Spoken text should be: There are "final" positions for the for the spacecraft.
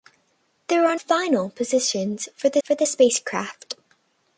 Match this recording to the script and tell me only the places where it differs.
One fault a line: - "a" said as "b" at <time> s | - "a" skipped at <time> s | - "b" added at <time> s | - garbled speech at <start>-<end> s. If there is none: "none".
none